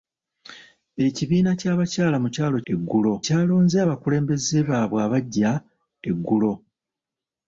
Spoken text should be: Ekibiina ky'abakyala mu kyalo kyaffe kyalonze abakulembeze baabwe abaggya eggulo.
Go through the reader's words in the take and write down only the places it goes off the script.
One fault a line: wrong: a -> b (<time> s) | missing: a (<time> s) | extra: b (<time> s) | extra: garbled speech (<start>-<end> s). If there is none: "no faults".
wrong: kyaffe -> eggulo (2.7 s)